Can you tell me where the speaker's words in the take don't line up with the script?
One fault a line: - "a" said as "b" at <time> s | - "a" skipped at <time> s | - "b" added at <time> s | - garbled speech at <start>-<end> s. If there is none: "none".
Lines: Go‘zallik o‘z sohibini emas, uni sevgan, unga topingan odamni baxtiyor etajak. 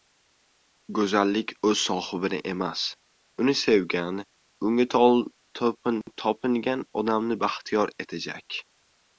none